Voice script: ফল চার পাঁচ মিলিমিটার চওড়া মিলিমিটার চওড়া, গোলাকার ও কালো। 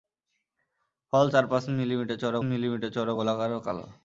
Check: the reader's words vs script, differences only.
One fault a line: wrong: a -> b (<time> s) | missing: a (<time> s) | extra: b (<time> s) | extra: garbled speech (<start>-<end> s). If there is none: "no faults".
no faults